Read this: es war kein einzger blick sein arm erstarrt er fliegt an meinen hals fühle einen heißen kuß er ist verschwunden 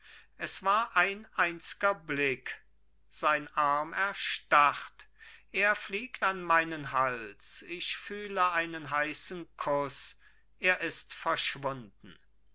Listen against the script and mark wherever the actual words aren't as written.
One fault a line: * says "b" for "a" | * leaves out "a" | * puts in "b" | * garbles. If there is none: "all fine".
* says "ein" for "kein"
* puts in "ich"